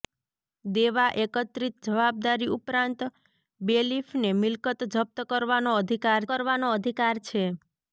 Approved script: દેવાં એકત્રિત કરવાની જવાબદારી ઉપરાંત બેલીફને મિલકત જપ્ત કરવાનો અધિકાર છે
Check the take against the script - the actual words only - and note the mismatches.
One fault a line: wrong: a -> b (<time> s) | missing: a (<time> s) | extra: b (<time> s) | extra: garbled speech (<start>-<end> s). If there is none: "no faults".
missing: કરવાની (1.8 s)
extra: કરવાનો અધિકાર (6.3 s)